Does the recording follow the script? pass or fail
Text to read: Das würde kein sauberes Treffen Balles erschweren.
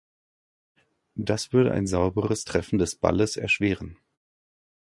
fail